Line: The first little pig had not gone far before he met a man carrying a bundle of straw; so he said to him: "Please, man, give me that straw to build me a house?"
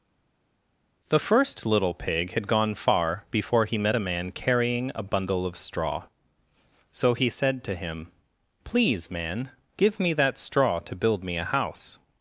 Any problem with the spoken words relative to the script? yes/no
yes